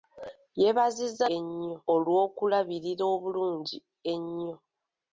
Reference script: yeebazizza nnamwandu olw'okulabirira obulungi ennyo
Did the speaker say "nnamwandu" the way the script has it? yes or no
no